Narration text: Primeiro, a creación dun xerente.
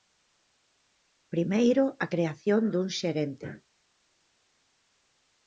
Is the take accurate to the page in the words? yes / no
yes